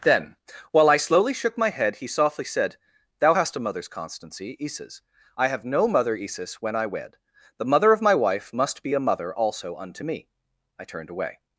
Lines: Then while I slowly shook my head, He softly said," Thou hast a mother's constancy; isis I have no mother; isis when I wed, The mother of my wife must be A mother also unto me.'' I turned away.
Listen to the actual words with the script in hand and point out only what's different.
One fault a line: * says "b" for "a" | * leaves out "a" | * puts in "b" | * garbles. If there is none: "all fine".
all fine